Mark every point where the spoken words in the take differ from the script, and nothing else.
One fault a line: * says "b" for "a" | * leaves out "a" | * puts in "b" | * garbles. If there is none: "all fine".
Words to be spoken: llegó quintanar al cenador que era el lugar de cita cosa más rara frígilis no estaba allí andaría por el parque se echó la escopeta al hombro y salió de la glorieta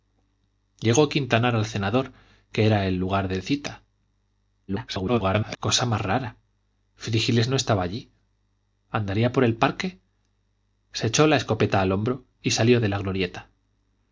* garbles